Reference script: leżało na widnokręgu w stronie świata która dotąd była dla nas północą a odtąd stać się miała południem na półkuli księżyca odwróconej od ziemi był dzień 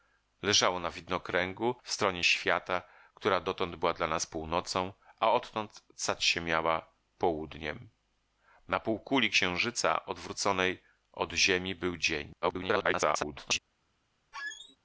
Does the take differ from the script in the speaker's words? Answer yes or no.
yes